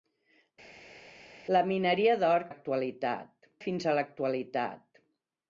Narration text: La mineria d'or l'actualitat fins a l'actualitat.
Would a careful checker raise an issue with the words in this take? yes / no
no